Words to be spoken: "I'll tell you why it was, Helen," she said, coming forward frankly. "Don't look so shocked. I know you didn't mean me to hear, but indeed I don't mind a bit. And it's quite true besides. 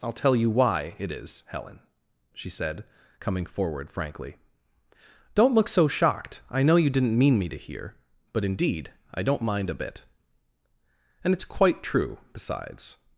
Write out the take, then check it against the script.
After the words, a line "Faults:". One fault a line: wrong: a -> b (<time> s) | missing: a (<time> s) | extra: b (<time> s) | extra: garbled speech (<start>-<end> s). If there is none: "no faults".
"I'll tell you why it is, Helen," she said, coming forward frankly. "Don't look so shocked. I know you didn't mean me to hear, but indeed I don't mind a bit. And it's quite true besides.
Faults:
wrong: was -> is (1.1 s)